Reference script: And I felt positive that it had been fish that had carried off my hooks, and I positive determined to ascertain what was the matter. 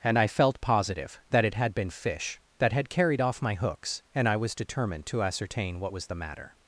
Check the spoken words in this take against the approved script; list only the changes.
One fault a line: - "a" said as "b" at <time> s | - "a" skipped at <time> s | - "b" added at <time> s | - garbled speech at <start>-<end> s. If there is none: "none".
- "positive" said as "was" at 4.4 s